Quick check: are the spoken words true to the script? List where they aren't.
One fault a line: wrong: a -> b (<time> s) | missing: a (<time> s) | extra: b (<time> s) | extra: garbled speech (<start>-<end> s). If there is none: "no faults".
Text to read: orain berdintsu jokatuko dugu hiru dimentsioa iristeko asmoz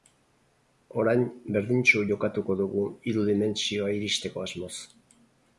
no faults